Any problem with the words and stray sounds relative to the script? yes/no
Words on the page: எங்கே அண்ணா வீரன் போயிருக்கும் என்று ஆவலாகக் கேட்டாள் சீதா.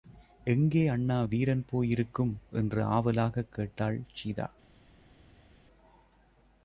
no